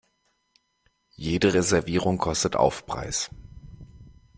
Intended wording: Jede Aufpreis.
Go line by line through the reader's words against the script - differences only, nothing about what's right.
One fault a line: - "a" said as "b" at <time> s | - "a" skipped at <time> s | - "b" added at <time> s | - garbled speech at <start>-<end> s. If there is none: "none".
- "Reservierung kostet" added at 1.5 s